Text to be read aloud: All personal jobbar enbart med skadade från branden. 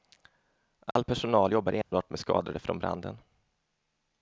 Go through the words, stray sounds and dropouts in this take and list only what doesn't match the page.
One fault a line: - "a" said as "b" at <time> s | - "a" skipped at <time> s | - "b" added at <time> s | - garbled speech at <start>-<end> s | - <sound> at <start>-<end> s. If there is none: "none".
- dropout at 0.9-1.0 s
- dropout at 1.8-1.9 s